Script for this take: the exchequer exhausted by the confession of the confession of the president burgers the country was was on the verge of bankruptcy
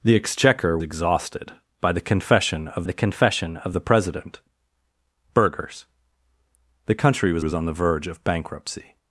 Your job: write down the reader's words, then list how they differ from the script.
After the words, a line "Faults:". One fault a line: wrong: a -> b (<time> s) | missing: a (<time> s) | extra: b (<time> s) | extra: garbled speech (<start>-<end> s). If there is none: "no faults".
the exchequer exhausted by the confession of the confession of the president burgers the country was was on the verge of bankruptcy
Faults:
no faults